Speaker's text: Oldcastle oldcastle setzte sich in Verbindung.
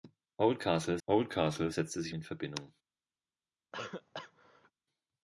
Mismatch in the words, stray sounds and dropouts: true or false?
true